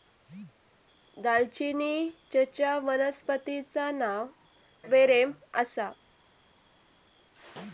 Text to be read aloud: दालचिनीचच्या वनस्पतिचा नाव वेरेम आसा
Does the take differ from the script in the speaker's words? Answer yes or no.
no